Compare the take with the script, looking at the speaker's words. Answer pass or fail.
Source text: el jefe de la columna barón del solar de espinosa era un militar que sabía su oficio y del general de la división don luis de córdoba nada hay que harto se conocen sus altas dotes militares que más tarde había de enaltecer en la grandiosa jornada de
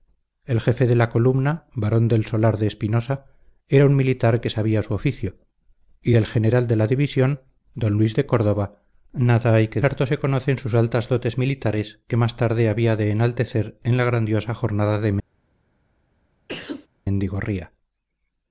pass